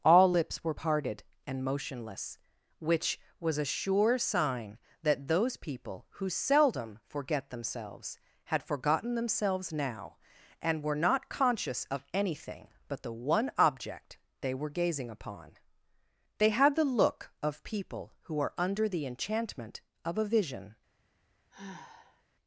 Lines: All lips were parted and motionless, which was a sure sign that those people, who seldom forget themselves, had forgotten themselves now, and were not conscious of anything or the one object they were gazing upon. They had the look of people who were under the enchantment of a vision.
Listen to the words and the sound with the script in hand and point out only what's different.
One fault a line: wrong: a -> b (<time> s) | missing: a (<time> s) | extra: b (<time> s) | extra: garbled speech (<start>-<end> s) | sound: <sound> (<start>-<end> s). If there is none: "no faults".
wrong: or -> but (12.9 s)
wrong: were -> are (18.4 s)
sound: sigh (21.5-22.2 s)